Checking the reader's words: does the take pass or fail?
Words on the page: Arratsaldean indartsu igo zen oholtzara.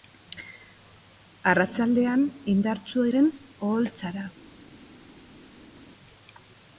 fail